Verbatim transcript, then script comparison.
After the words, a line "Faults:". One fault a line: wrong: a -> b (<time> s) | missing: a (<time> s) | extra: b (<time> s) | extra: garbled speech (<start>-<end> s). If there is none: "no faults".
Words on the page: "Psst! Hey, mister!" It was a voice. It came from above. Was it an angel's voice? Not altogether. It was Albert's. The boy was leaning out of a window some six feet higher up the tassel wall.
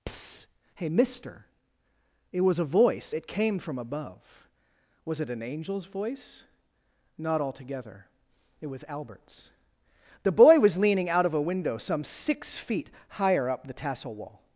"Psst! Hey, mister!" It was a voice. It came from above. Was it an angel's voice? Not altogether. It was Albert's. The boy was leaning out of a window some six feet higher up the tassel wall.
Faults:
no faults